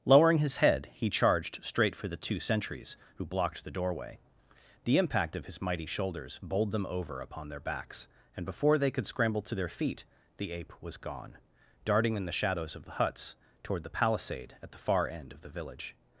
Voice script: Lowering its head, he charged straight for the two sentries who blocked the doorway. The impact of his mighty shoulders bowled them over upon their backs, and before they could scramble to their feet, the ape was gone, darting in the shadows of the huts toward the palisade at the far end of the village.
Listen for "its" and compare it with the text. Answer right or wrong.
wrong